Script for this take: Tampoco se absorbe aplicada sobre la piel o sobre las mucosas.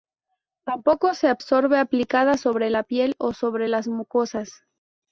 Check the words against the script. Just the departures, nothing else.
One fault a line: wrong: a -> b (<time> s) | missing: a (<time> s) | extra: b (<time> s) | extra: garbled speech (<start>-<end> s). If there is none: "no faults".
no faults